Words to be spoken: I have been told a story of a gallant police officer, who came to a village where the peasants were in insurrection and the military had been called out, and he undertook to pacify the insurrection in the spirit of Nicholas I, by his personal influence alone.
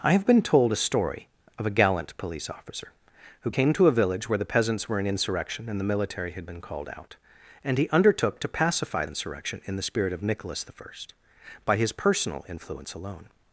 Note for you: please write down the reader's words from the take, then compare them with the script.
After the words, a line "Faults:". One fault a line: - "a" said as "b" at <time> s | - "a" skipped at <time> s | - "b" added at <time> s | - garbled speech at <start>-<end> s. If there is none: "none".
I have been told a story of a gallant police officer, who came to a village where the peasants were in insurrection and the military had been called out, and he undertook to pacify insurrection in the spirit of Nicholas I, by his personal influence alone.
Faults:
- "the" skipped at 9.0 s